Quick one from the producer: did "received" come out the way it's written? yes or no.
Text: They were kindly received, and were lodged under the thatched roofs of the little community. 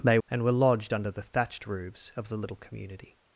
no